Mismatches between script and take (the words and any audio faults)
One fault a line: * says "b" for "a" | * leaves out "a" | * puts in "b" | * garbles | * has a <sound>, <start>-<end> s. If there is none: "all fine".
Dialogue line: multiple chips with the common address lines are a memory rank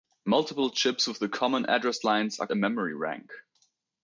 all fine